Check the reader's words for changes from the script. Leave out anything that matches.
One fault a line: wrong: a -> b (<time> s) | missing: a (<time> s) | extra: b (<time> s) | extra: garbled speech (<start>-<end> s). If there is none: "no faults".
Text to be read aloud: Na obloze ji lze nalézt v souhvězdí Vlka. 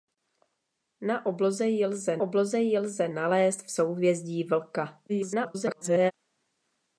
extra: obloze ji lze (2.2 s)
extra: garbled speech (5.1-6.1 s)